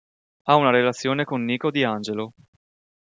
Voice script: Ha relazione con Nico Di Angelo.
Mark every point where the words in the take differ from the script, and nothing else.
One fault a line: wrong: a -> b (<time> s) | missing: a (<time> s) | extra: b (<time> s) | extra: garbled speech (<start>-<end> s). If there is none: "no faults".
extra: una (0.6 s)